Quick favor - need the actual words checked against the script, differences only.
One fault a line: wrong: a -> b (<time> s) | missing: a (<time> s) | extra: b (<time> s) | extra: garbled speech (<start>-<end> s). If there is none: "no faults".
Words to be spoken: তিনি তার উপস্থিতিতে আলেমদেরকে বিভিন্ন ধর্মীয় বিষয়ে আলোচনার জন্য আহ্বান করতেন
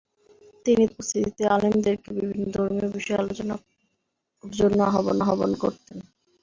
missing: তার (0.8 s)
extra: আহ্বান (5.2 s)